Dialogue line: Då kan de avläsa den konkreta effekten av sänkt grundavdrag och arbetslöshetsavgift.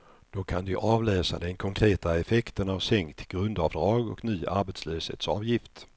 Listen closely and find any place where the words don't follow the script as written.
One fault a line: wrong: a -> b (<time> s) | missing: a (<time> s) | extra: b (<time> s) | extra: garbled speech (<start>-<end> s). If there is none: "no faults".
extra: ny (4.2 s)